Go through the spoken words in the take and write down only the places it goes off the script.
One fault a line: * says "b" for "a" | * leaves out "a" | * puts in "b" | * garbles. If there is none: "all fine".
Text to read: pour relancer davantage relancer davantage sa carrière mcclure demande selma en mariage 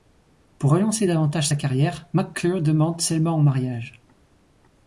* leaves out "relancer davantage"